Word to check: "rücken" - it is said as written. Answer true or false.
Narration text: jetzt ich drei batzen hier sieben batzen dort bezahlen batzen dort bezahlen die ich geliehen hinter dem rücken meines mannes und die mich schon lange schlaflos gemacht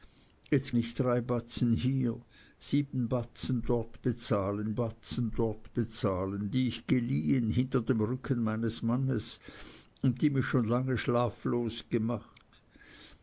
true